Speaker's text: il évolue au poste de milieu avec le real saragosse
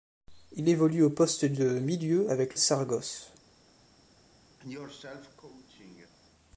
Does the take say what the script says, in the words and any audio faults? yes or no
no